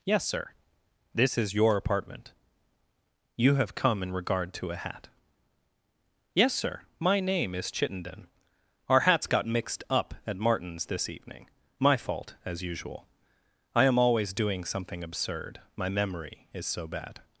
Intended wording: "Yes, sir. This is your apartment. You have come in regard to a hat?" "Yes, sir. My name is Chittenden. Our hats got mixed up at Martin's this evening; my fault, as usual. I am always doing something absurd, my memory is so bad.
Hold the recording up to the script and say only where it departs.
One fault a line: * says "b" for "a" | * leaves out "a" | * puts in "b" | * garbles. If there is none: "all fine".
all fine